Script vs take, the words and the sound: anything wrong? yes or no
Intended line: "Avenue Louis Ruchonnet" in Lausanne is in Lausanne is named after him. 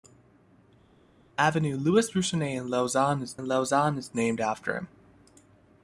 no